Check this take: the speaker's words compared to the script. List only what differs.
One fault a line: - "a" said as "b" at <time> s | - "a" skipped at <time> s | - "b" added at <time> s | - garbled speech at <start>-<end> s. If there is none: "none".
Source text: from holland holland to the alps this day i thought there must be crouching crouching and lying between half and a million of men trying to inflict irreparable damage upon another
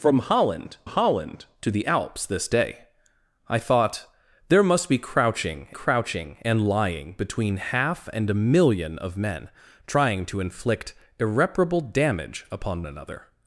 none